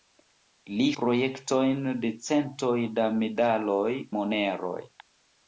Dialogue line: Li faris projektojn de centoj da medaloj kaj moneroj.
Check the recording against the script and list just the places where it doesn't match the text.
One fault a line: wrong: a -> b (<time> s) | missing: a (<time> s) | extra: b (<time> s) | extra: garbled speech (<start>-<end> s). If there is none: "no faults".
missing: faris (0.9 s)
missing: kaj (4.0 s)